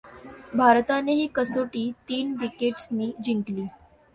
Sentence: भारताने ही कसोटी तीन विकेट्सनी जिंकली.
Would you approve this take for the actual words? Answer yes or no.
yes